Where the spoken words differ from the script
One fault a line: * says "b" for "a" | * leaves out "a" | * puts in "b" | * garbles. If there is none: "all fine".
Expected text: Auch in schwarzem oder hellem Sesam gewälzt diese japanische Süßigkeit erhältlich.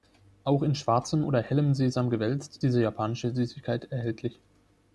all fine